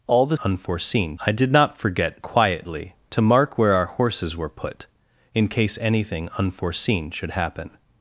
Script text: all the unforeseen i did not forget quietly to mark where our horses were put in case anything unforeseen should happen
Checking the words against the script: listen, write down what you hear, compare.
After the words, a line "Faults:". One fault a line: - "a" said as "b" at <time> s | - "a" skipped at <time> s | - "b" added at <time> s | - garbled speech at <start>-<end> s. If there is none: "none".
all the unforeseen i did not forget quietly to mark where our horses were put in case anything unforeseen should happen
Faults:
none